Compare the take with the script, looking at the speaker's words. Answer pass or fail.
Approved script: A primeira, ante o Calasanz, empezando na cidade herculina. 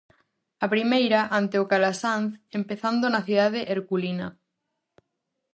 pass